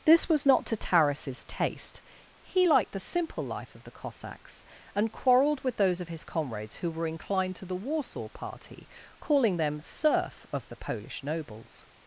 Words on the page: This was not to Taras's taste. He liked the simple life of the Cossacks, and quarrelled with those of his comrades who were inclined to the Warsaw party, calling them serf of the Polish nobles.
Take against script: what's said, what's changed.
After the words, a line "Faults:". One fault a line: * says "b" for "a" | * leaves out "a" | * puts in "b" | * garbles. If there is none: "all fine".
This was not to Taras's taste. He liked the simple life of the Cossacks, and quarrelled with those of his comrades who were inclined to the Warsaw party, calling them serf of the Polish nobles.
Faults:
all fine